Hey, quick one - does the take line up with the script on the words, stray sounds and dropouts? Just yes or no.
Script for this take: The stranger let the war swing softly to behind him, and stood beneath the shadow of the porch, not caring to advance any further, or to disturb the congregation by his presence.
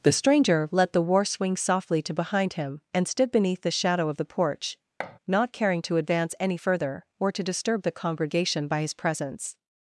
no